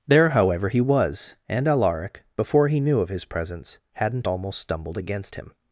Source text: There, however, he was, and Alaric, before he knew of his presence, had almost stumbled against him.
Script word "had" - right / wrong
wrong